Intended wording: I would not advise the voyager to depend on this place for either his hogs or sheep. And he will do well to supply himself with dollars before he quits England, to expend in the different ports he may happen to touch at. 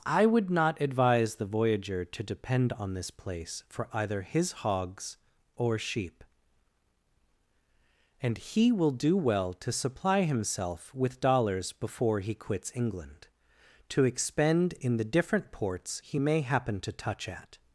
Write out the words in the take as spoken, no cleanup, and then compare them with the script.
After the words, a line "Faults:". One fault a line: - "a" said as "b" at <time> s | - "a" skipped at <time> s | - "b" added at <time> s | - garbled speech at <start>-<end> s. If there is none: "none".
I would not advise the voyager to depend on this place for either his hogs or sheep. And he will do well to supply himself with dollars before he quits England, to expend in the different ports he may happen to touch at.
Faults:
none